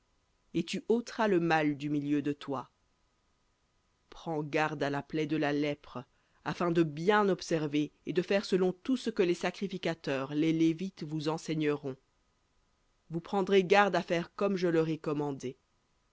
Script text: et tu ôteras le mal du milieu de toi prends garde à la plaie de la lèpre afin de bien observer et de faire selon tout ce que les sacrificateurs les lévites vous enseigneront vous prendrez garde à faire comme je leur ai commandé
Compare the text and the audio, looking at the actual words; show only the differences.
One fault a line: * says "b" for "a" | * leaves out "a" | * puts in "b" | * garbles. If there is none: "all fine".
all fine